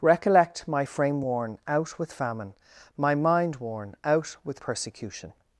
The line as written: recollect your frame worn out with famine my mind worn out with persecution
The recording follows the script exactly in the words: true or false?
false